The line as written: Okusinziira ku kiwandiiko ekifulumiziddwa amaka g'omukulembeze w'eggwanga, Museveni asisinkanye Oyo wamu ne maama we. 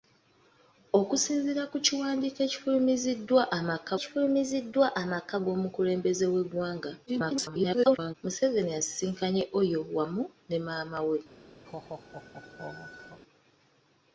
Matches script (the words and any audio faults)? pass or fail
fail